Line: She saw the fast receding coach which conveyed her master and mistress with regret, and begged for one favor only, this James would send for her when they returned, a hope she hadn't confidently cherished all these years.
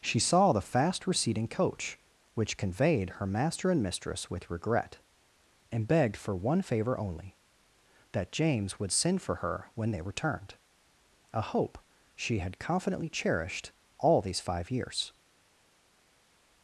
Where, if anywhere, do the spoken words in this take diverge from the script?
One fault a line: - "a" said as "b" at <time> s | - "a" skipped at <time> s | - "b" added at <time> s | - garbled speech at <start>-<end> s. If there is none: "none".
- "this" said as "that" at 8.1 s
- "hadn't" said as "had" at 12.4 s
- "five" added at 14.4 s